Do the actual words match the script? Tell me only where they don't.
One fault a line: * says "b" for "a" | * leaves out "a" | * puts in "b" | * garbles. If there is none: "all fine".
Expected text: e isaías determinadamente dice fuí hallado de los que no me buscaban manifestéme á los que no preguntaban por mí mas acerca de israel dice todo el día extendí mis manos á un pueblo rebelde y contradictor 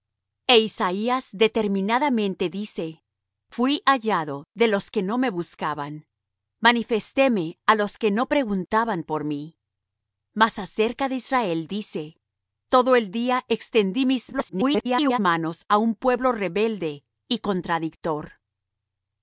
* garbles